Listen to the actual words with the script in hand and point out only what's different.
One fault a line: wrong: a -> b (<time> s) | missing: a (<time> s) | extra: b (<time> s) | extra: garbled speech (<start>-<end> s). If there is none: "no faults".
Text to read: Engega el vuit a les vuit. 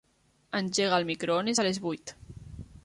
wrong: vuit -> microones (1.1 s)